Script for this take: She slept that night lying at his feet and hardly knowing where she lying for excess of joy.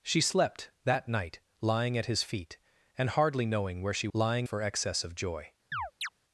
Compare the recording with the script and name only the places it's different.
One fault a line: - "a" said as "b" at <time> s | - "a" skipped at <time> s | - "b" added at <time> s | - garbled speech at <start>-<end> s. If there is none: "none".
none